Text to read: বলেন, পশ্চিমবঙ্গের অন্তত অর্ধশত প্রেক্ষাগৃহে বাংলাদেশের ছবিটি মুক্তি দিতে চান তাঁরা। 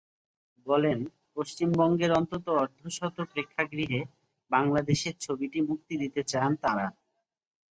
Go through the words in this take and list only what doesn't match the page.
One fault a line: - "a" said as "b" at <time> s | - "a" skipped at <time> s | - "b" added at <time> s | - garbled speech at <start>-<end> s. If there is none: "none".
none